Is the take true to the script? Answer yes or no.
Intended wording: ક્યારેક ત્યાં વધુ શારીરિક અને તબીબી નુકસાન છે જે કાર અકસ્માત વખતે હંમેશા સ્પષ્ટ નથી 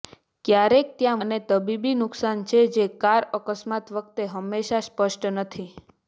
no